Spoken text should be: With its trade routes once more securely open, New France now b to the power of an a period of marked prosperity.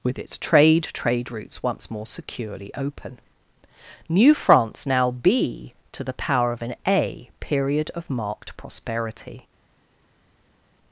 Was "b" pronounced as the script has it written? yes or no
yes